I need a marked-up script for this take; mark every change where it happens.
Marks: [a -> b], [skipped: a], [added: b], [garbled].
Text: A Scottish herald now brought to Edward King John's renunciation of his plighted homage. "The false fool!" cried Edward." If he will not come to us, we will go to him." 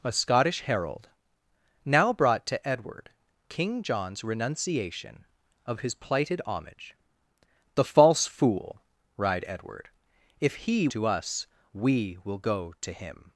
A Scottish herald now brought to Edward King John's renunciation of his plighted homage. "The false fool!" cried Edward." If he [skipped: will not come] to us, we will go to him."